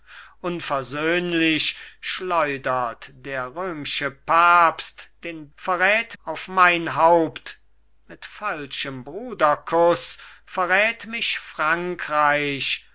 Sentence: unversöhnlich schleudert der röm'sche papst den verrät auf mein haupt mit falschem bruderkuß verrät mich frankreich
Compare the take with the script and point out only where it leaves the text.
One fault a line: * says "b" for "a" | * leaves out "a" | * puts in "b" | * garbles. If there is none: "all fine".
all fine